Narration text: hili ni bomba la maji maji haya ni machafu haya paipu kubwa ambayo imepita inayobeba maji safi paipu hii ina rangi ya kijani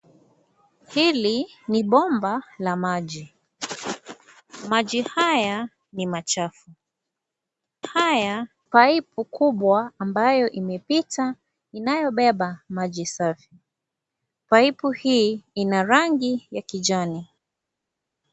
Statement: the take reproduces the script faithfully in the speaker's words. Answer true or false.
true